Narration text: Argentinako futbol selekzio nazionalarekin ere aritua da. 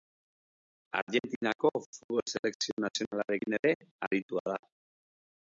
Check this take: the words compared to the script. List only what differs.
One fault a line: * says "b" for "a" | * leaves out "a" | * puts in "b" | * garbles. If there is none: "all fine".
all fine